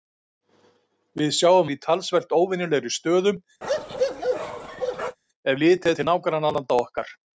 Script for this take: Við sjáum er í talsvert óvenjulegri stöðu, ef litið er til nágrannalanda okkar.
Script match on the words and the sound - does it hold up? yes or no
no